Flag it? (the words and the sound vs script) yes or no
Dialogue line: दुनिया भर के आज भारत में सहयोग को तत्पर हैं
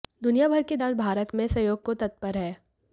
no